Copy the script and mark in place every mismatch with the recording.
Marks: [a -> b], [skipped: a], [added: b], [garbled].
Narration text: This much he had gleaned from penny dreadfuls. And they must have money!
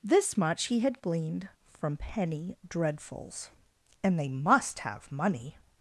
This much he had gleaned from penny dreadfuls. And they must have money!